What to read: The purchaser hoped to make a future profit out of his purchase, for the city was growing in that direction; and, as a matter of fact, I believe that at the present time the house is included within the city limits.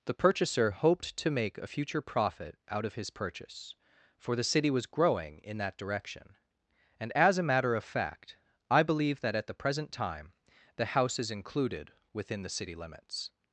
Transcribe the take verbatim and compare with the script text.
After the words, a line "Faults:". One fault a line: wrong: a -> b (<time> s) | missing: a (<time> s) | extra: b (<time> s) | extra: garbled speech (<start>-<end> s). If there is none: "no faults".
The purchaser hoped to make a future profit out of his purchase, for the city was growing in that direction; and, as a matter of fact, I believe that at the present time the house is included within the city limits.
Faults:
no faults